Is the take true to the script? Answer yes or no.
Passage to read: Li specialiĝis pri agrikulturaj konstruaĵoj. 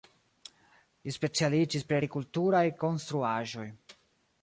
yes